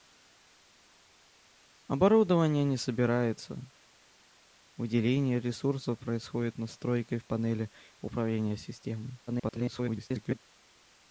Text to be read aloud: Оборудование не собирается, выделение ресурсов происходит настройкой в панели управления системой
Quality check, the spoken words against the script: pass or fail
fail